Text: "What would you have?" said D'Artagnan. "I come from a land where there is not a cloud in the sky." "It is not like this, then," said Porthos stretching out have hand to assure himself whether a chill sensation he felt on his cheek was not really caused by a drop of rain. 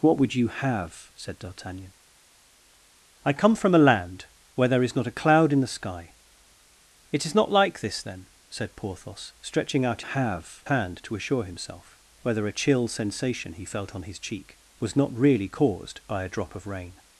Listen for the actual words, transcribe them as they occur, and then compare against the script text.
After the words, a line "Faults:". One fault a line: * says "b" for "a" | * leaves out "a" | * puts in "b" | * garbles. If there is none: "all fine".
"What would you have?" said D'Artagnan. "I come from a land where there is not a cloud in the sky." "It is not like this, then," said Porthos stretching out have hand to assure himself whether a chill sensation he felt on his cheek was not really caused by a drop of rain.
Faults:
all fine